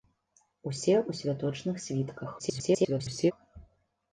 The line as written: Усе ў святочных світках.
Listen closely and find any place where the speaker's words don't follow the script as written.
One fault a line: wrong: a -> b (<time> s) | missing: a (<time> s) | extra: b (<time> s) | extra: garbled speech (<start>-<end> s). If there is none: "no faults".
extra: garbled speech (2.4-3.3 s)